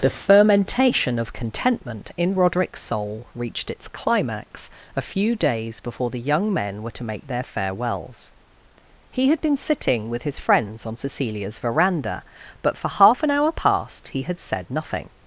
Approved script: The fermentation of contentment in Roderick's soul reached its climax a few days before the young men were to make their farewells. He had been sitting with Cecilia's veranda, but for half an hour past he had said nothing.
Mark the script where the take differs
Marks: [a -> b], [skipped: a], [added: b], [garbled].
The fermentation of contentment in Roderick's soul reached its climax a few days before the young men were to make their farewells. He had been sitting with [added: his friends on] Cecilia's veranda, but for half an hour past he had said nothing.